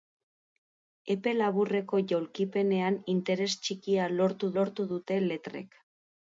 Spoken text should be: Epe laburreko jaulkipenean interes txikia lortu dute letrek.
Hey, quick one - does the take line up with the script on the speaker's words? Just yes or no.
no